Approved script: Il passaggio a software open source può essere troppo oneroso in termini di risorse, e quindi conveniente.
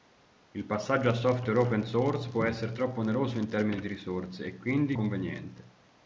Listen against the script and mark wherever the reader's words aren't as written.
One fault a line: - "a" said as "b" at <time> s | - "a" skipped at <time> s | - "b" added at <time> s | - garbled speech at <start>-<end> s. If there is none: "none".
none